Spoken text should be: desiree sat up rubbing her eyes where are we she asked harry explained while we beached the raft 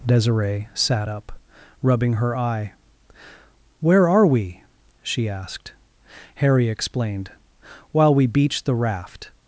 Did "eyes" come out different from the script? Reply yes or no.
yes